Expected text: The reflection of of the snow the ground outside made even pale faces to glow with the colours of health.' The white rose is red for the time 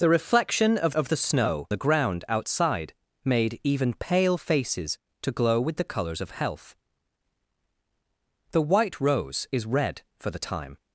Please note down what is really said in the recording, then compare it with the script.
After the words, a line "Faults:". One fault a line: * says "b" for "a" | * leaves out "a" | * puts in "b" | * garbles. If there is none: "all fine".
The reflection of of the snow the ground outside made even pale faces to glow with the colours of health.' The white rose is red for the time
Faults:
all fine